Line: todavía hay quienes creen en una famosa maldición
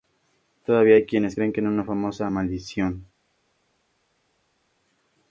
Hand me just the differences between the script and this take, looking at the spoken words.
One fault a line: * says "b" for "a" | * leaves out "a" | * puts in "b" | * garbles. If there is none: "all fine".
all fine